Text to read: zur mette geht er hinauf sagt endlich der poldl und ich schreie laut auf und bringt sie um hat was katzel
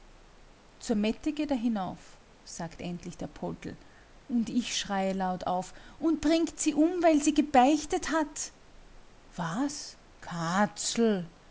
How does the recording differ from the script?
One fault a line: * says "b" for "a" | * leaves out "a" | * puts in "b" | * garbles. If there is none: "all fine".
* puts in "weil sie gebeichtet"